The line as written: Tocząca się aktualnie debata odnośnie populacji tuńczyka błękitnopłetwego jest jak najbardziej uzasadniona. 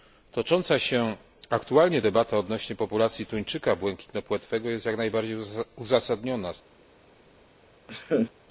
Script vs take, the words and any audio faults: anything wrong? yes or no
yes